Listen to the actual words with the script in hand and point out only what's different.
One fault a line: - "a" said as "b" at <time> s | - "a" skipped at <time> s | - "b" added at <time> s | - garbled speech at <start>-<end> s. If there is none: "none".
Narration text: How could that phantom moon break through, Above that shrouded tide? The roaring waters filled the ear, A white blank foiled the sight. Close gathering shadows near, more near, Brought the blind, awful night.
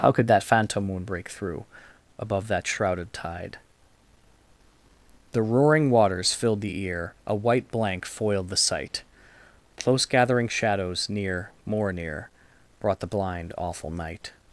none